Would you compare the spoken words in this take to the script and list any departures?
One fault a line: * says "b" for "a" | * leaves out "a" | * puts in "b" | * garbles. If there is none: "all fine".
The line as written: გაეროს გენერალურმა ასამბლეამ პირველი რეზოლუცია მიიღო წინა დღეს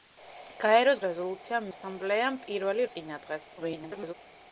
* says "რეზოლუცია" for "გენერალურმა"
* leaves out "რეზოლუცია მიიღო"
* garbles